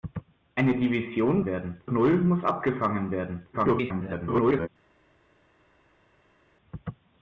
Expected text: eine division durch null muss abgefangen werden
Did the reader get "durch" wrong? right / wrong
wrong